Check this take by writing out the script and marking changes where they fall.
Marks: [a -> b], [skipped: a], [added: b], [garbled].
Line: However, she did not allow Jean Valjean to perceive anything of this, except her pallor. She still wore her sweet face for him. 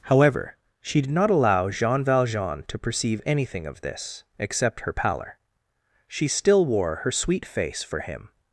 However, she did not allow Jean Valjean to perceive anything of this, except her pallor. She still wore her sweet face for him.